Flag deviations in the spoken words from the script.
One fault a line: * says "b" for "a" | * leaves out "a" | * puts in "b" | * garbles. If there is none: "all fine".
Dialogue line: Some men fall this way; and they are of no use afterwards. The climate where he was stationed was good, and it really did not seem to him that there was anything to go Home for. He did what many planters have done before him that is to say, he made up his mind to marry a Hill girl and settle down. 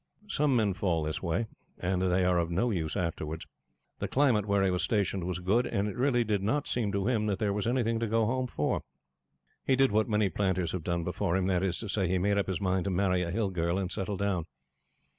all fine